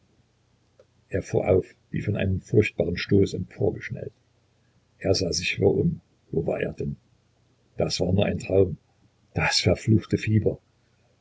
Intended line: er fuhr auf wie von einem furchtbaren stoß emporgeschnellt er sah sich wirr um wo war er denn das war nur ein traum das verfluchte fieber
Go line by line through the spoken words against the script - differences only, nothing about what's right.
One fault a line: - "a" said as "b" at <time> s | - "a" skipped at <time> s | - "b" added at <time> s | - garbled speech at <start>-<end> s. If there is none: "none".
none